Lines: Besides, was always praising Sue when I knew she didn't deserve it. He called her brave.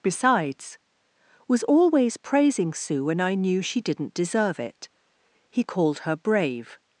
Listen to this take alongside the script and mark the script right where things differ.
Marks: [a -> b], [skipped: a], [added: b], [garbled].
Besides, was always praising Sue when I knew she didn't deserve it. He called her brave.